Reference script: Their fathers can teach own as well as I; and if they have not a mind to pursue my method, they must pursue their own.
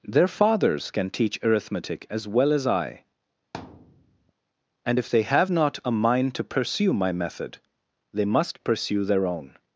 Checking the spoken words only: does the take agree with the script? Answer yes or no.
no